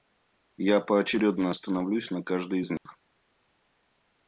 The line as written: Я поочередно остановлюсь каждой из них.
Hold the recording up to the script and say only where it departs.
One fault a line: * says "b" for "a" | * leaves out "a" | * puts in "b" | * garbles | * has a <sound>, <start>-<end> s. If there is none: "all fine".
* puts in "на"
* has a dropout, 2.8-2.9 s